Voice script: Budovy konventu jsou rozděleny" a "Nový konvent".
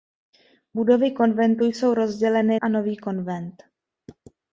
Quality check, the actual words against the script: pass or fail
pass